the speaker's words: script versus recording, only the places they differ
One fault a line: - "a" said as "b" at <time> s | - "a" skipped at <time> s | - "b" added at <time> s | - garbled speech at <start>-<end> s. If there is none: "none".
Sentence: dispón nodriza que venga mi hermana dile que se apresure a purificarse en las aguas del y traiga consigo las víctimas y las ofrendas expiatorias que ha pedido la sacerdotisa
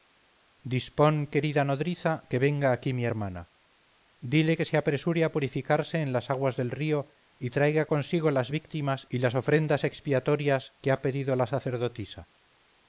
- "querida" added at 1.3 s
- "aquí" added at 2.7 s
- "río" added at 6.7 s